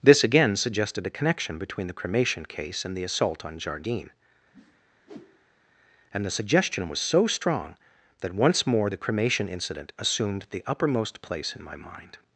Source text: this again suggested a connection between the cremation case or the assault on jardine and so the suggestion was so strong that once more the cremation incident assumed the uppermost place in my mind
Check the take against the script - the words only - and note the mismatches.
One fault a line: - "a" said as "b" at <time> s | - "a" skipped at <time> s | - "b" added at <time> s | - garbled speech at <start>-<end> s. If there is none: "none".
- "or" said as "and" at 2.9 s
- "so" skipped at 6.2 s